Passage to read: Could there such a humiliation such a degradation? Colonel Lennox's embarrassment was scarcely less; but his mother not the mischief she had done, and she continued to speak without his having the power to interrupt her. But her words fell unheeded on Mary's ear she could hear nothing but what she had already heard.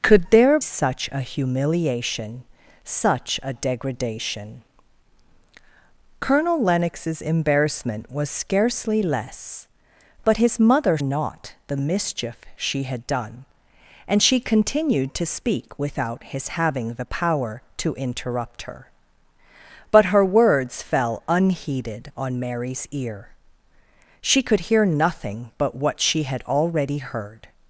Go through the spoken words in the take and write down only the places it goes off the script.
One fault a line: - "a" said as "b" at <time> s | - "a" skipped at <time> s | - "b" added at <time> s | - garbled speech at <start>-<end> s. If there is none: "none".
none